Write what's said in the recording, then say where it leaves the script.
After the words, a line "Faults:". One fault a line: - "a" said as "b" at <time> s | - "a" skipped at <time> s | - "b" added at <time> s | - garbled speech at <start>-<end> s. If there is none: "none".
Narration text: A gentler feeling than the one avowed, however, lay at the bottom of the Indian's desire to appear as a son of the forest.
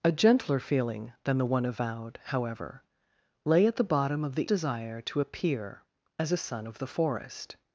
A gentler feeling than the one avowed, however, lay at the bottom of the Desire to appear as a son of the forest.
Faults:
- "Indian's" skipped at 4.5 s